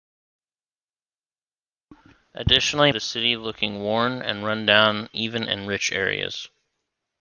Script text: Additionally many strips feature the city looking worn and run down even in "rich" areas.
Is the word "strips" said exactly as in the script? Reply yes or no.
no